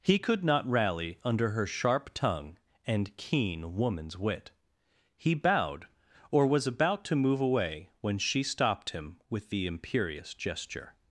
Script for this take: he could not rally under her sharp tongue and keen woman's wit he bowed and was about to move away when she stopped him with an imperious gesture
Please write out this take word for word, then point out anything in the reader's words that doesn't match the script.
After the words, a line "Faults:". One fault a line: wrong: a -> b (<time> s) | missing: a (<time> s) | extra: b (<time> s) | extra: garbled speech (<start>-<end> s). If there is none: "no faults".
he could not rally under her sharp tongue and keen woman's wit he bowed or was about to move away when she stopped him with the imperious gesture
Faults:
wrong: and -> or (6.3 s)
wrong: an -> the (9.5 s)